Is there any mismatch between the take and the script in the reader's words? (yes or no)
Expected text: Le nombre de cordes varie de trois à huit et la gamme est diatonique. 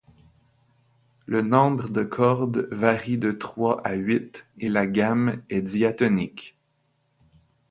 no